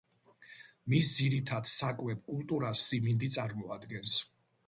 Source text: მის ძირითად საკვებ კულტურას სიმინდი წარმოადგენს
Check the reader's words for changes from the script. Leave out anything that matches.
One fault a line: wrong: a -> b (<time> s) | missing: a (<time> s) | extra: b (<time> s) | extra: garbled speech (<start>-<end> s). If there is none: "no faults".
no faults